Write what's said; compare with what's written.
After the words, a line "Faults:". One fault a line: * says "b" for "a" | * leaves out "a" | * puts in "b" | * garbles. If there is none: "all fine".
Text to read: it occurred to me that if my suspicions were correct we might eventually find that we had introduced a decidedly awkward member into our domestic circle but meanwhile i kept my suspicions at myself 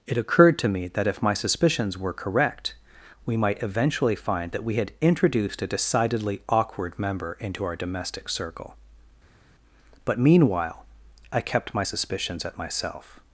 it occurred to me that if my suspicions were correct we might eventually find that we had introduced a decidedly awkward member into our domestic circle but meanwhile i kept my suspicions at myself
Faults:
all fine